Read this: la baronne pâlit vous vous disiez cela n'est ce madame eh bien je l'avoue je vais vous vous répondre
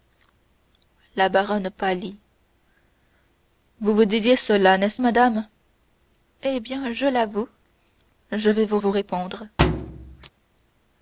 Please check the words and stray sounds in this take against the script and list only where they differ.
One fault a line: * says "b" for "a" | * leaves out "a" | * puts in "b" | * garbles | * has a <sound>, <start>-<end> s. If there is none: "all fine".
* has a thud, 9.6-10.3 s